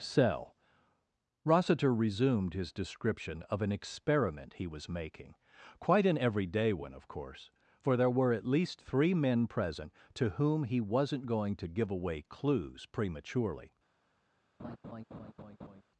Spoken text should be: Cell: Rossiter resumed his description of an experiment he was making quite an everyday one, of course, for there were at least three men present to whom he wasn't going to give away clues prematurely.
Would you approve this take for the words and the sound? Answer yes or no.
no